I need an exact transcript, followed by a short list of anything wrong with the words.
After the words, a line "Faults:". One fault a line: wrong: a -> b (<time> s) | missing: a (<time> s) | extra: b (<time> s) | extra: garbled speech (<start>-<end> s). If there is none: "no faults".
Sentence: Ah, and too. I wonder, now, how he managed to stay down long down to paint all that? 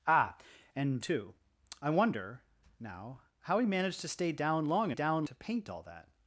Ah, and too. I wonder, now, how he managed to stay down long down to paint all that?
Faults:
no faults